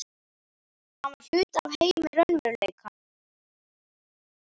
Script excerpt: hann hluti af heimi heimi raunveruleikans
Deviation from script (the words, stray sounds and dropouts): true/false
true